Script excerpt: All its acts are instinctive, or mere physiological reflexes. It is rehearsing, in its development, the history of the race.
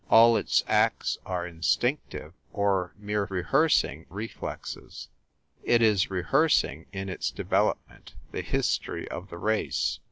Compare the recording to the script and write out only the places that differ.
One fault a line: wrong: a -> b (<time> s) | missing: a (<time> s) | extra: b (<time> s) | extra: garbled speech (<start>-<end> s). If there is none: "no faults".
wrong: physiological -> rehearsing (3.3 s)